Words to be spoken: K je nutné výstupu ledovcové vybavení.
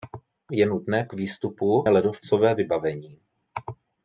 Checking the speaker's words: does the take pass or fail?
pass